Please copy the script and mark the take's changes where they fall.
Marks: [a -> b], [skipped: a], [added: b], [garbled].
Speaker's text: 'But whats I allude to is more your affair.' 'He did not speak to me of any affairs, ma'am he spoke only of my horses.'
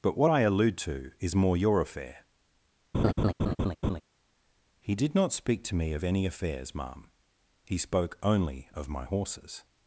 'But [whats -> what] I allude to is more your affair.' 'He did not speak to me of any affairs, ma'am he spoke only of my horses.'